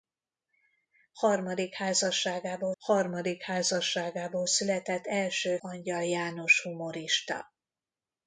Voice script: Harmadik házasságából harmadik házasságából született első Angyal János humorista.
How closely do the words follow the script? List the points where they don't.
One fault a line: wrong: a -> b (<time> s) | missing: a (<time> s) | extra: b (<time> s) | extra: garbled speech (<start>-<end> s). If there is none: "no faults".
no faults